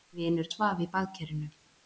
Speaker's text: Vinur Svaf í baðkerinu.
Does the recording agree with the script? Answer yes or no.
yes